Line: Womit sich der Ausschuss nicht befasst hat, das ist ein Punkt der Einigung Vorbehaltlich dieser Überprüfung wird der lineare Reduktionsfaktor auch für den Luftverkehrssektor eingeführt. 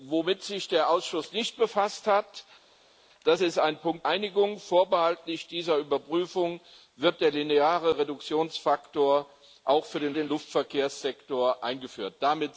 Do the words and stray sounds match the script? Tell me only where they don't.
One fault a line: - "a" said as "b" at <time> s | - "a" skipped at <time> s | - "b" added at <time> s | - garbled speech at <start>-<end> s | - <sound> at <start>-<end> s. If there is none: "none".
- "der" skipped at 4.1 s
- "den" added at 10.1 s